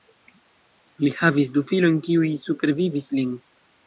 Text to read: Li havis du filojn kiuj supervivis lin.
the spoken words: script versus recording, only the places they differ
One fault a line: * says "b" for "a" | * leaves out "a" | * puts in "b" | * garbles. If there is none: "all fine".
all fine